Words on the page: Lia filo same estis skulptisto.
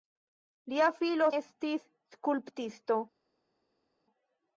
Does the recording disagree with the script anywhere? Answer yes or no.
yes